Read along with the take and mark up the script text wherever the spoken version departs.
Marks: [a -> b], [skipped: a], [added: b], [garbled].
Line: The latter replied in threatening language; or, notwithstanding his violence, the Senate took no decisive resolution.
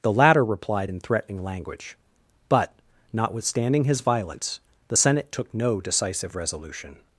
The latter replied in threatening language; [or, -> but] notwithstanding his violence, the Senate took no decisive resolution.